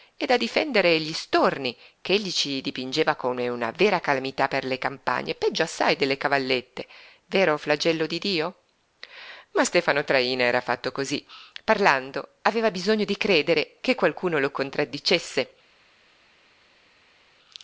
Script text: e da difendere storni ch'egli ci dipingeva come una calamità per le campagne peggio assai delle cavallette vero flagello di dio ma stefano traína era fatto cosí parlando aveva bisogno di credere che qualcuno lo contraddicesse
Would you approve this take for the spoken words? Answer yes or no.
no